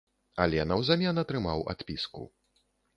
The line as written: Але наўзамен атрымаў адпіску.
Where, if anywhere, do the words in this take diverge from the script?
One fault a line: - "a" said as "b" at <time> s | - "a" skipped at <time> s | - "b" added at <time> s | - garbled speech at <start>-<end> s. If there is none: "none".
none